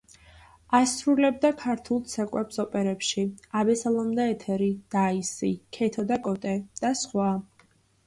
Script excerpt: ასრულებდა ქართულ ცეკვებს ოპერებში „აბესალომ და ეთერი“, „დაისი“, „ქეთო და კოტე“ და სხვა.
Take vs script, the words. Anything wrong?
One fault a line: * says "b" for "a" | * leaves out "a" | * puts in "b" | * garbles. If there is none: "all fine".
all fine